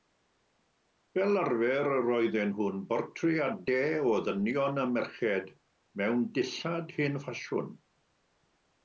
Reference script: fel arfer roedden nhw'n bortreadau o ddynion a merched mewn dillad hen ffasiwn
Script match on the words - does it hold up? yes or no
yes